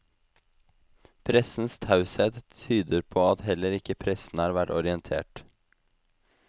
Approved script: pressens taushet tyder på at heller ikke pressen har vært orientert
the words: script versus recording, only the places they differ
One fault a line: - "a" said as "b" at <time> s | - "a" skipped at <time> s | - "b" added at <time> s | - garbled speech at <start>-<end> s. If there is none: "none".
none